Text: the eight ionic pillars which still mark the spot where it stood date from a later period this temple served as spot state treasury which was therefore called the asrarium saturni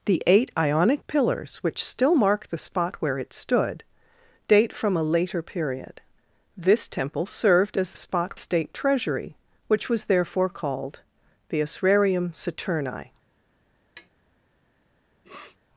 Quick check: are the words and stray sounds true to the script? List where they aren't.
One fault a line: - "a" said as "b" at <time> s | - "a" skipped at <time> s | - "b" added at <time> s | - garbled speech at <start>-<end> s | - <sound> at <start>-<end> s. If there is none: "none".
- tap at 14.0-14.1 s
- sniff at 15.2-15.6 s